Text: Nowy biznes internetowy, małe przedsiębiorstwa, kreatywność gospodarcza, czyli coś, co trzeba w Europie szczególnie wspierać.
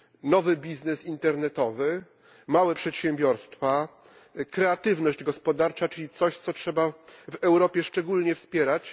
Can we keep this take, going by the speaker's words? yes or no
yes